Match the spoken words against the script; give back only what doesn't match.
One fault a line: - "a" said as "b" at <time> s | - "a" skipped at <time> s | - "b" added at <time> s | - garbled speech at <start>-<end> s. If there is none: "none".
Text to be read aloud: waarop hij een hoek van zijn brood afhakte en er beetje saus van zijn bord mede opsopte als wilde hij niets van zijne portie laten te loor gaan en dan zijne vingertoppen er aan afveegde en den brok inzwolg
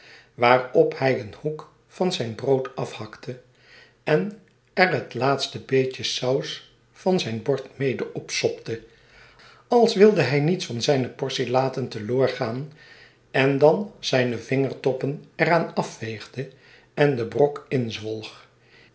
- "het laatste" added at 4.9 s